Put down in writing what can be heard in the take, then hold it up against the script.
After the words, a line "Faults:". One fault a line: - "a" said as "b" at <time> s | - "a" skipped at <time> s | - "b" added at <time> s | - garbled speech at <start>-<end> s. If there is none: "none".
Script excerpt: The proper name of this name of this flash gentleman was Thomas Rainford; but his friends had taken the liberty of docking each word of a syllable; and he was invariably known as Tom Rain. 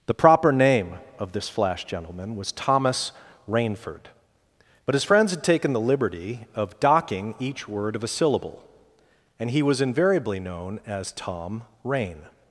The proper name of this flash gentleman was Thomas Rainford; but his friends had taken the liberty of docking each word of a syllable; and he was invariably known as Tom Rain.
Faults:
- "name of this" skipped at 1.5 s